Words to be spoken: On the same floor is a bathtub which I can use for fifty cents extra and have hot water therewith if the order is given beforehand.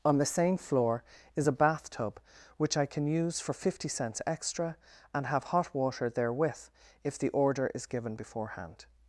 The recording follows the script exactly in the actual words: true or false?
true